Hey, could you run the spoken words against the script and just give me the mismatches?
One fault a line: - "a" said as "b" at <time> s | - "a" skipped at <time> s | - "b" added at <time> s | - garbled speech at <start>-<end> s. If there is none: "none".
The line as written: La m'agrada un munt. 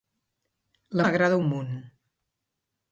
none